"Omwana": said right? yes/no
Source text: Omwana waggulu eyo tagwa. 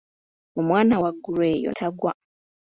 yes